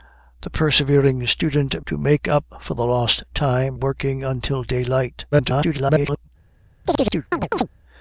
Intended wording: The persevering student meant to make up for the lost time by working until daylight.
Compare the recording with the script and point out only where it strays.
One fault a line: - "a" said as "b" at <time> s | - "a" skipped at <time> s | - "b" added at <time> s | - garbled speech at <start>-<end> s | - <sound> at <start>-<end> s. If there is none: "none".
- "meant" skipped at 1.9 s
- "by" skipped at 3.7 s
- garbled speech at 5.3-6.3 s
- chirp at 6.9-7.7 s